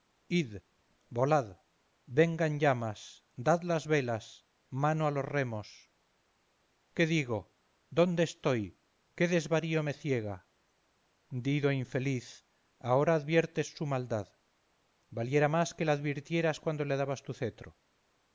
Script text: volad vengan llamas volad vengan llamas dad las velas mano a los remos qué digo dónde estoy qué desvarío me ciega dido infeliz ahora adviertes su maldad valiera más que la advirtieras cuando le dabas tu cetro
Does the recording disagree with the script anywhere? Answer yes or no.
yes